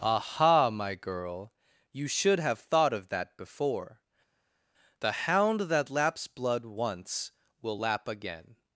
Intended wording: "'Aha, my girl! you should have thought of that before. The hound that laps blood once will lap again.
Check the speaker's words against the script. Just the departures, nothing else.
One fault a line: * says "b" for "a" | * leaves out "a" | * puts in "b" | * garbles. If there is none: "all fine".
all fine